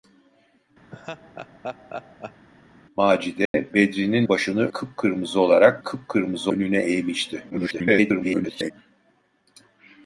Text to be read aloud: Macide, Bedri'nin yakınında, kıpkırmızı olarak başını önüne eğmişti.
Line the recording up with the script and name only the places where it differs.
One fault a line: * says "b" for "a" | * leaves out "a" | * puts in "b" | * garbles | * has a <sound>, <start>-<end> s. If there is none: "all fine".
* has a laugh, 0.9-2.5 s
* has a dropout, 3.5-3.5 s
* says "başını" for "yakınında"
* says "kıpkırmızı" for "başını"
* garbles